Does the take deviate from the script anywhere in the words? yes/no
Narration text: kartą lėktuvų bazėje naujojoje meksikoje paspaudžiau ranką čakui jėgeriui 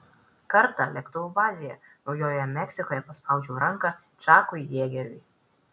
no